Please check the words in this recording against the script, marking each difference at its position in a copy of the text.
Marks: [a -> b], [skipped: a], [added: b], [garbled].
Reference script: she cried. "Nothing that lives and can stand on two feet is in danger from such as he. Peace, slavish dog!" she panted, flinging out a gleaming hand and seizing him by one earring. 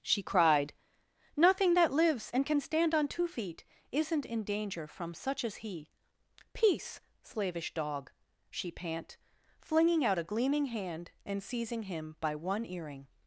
she cried. "Nothing that lives and can stand on two feet [is -> isn't] in danger from such as he. Peace, slavish dog!" she [panted, -> pant] flinging out a gleaming hand and seizing him by one earring.